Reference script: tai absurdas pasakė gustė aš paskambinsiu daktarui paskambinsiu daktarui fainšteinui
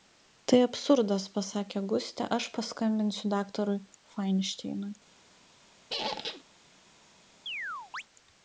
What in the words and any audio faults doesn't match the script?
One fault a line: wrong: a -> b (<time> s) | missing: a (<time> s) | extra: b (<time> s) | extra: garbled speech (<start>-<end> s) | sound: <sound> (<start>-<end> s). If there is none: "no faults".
missing: paskambinsiu daktarui (3.8 s)
sound: squeak (5.9-6.4 s)
sound: chirp (7.5-8.0 s)